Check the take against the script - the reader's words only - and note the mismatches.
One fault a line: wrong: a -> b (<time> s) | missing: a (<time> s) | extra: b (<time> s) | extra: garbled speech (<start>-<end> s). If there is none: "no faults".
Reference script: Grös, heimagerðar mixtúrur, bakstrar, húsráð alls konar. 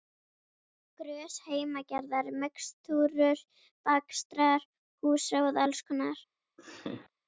no faults